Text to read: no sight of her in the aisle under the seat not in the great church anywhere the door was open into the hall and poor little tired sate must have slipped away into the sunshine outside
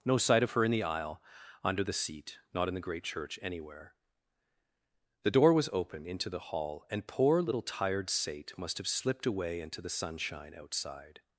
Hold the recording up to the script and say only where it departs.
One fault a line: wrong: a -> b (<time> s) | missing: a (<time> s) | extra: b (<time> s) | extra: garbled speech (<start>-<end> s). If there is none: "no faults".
no faults